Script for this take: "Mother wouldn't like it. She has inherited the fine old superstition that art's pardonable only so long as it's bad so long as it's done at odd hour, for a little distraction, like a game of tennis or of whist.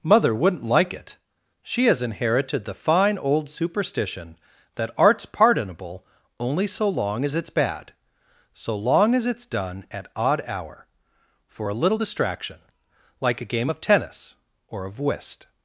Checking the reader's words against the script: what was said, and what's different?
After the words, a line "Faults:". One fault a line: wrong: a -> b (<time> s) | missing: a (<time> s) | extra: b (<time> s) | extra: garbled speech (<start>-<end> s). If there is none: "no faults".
"Mother wouldn't like it. She has inherited the fine old superstition that art's pardonable only so long as it's bad so long as it's done at odd hour, for a little distraction, like a game of tennis or of whist.
Faults:
no faults